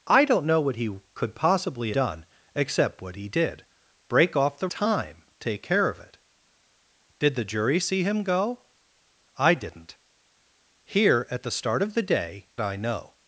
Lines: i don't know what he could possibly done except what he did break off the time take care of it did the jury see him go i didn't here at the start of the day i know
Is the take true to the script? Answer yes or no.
yes